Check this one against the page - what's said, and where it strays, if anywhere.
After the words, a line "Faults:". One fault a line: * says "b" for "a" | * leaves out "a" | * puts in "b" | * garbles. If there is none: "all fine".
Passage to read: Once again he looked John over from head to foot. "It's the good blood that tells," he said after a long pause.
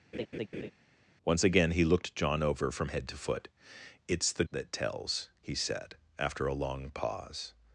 Once again he looked John over from head to foot. "It's the that tells," he said after a long pause.
Faults:
* leaves out "good blood"